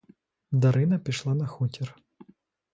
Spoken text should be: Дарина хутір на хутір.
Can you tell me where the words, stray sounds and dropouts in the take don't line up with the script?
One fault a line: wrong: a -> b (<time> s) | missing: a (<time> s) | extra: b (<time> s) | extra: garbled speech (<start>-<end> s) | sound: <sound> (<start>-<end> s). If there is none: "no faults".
wrong: хутір -> пішла (1.0 s)